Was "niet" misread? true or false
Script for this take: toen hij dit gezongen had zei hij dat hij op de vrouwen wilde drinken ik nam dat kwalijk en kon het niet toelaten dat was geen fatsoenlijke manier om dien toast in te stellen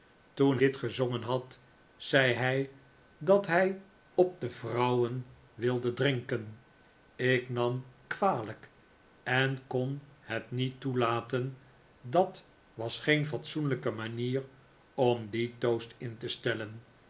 false